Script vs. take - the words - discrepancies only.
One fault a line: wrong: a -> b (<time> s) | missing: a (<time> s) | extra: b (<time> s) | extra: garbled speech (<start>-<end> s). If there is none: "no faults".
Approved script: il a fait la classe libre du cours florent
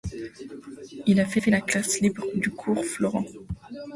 extra: fait (1.4 s)